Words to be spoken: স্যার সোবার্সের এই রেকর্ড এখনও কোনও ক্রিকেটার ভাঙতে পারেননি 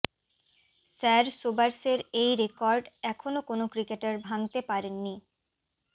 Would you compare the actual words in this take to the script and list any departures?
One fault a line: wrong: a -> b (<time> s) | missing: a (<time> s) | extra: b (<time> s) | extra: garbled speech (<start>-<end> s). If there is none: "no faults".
no faults